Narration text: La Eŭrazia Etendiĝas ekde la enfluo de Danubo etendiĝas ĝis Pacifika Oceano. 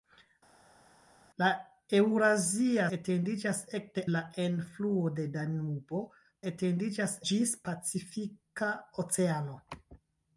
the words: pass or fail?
pass